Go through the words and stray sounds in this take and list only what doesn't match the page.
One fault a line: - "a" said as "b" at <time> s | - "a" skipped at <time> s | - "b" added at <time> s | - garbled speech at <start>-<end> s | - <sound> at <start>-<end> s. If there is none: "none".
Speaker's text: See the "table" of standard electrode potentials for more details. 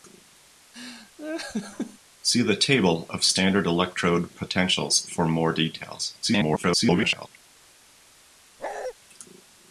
- laugh at 0.7-2.0 s
- garbled speech at 6.2-7.3 s
- bark at 8.6-8.9 s